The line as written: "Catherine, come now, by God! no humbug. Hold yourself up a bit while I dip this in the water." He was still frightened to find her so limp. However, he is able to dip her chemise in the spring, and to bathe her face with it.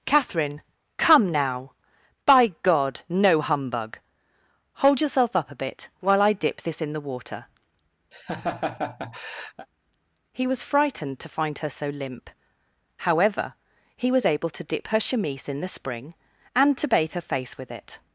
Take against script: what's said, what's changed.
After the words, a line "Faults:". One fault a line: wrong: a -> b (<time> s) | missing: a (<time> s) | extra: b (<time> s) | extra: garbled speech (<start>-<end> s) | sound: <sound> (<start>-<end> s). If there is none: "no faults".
"Catherine, come now, by God! no humbug. Hold yourself up a bit while I dip this in the water." He was frightened to find her so limp. However, he was able to dip her chemise in the spring, and to bathe her face with it.
Faults:
sound: laugh (8.1-9.7 s)
missing: still (10.6 s)
wrong: is -> was (14.1 s)